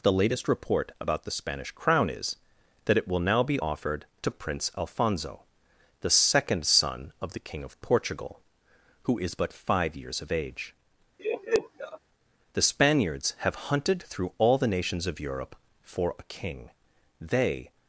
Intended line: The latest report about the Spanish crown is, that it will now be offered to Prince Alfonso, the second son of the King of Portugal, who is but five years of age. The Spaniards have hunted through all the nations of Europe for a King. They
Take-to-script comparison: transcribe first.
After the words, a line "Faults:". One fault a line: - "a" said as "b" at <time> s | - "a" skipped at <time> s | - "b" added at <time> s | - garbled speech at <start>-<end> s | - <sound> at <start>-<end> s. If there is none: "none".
The latest report about the Spanish crown is, that it will now be offered to Prince Alfonso, the second son of the King of Portugal, who is but five years of age. The Spaniards have hunted through all the nations of Europe for a King. They
Faults:
- laugh at 11.2-12.0 s